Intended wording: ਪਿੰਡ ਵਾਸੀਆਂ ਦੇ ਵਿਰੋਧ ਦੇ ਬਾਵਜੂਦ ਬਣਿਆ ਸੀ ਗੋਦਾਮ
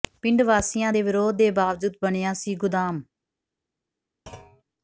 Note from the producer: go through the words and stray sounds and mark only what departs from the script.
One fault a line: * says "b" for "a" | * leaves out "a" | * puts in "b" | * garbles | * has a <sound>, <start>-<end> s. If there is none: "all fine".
* has a thud, 4.3-4.6 s